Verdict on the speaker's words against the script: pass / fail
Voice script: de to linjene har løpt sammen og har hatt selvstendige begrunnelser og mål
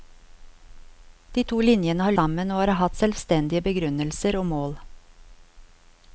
fail